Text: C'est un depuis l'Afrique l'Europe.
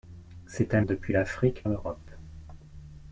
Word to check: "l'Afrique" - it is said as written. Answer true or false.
true